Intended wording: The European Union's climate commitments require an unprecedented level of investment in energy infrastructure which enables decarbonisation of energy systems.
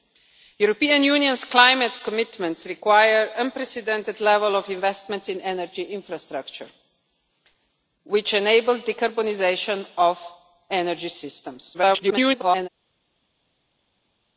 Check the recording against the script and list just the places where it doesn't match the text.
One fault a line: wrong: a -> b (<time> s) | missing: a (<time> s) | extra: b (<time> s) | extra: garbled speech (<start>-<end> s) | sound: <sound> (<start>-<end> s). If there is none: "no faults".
extra: garbled speech (11.7-12.7 s)